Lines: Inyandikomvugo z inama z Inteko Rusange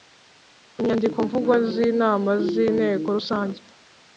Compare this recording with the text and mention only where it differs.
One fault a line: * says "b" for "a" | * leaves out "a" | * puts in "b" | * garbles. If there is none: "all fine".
all fine